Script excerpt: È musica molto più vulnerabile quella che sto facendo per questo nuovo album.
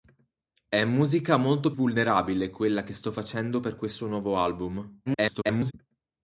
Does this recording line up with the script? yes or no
no